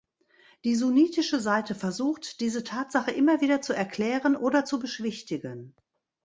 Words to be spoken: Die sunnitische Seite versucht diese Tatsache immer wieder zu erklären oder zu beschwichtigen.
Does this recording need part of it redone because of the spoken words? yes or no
no